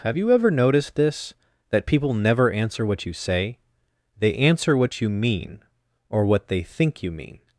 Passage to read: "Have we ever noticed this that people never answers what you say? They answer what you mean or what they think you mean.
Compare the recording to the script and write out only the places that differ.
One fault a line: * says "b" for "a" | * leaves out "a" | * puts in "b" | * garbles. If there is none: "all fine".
* says "you" for "we"
* says "answer" for "answers"